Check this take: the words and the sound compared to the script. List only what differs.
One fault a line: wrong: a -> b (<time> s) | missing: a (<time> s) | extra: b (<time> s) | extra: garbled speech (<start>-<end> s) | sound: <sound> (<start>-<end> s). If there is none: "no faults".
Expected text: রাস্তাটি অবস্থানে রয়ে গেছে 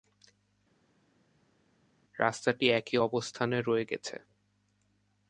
extra: একই (2.7 s)